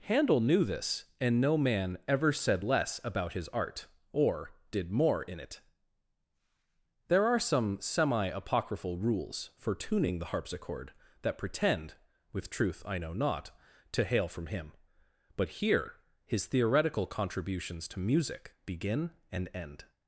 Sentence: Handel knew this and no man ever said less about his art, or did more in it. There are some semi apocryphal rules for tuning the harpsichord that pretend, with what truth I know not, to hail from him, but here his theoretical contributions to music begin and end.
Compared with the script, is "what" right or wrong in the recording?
wrong